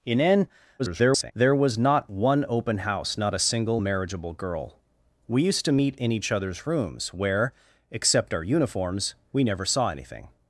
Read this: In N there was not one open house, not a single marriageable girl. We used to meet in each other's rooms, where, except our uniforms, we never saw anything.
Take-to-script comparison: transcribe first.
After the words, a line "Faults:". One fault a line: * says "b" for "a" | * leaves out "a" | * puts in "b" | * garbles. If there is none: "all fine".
In N [garbled] there was not one open house, not a single marriageable girl. We used to meet in each other's rooms, where, except our uniforms, we never saw anything.
Faults:
* garbles